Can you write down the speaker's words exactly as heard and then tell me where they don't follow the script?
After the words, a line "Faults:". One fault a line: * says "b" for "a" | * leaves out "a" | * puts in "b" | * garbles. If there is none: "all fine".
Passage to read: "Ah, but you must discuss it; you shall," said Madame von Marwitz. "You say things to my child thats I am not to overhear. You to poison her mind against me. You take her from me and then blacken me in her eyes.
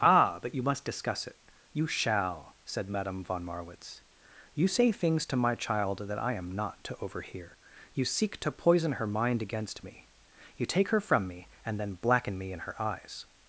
"Ah, but you must discuss it; you shall," said Madame von Marwitz. "You say things to my child that I am not to overhear. You seek to poison her mind against me. You take her from me and then blacken me in her eyes.
Faults:
* says "that" for "thats"
* puts in "seek"